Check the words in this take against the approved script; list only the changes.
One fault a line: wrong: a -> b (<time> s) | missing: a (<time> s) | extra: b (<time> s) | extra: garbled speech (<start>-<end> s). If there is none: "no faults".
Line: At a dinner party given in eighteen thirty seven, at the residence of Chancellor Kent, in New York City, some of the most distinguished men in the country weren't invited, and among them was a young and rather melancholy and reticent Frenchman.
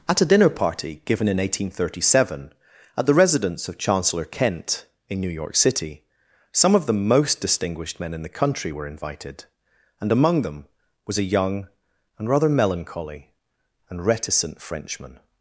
wrong: weren't -> were (8.7 s)